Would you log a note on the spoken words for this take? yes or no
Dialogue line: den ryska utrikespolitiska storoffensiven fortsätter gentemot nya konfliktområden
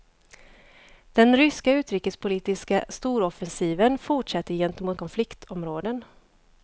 yes